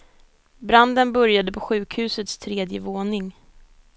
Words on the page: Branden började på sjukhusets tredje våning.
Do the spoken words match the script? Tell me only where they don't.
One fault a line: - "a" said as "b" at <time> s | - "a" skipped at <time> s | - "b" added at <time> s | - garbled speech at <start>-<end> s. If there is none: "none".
none